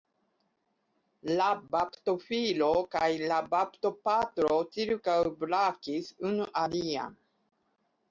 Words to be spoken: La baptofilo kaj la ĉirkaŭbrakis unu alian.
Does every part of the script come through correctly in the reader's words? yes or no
no